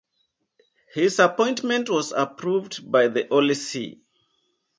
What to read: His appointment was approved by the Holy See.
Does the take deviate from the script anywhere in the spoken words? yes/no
no